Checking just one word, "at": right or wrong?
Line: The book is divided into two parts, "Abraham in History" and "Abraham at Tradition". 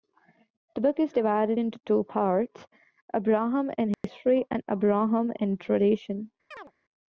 wrong